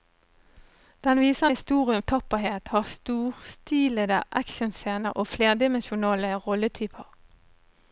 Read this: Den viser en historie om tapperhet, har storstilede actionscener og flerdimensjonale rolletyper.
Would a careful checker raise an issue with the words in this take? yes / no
no